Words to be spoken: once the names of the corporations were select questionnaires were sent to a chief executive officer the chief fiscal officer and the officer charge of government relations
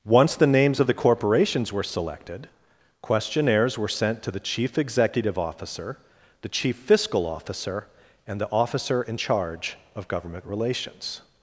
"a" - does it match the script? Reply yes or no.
no